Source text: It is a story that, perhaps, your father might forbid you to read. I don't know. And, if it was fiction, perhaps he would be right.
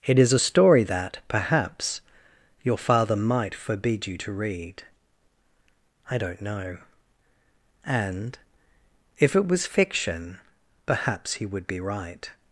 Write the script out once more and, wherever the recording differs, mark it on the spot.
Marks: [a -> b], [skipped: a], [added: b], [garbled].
It is a story that, perhaps, your father might forbid you to read. I don't know. And, if it was fiction, perhaps he would be right.